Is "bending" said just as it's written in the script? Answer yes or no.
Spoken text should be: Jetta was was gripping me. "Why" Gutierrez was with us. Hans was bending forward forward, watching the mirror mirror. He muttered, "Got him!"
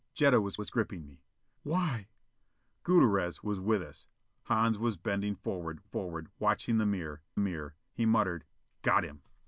yes